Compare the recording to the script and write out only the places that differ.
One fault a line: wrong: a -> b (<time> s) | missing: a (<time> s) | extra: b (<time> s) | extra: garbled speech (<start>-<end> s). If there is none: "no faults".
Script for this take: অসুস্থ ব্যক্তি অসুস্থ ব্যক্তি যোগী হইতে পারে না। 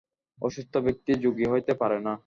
missing: অসুস্থ ব্যক্তি (1.1 s)